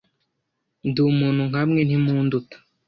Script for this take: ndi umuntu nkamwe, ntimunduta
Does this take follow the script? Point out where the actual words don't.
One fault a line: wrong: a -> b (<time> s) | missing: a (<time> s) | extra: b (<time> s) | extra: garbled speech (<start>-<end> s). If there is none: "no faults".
no faults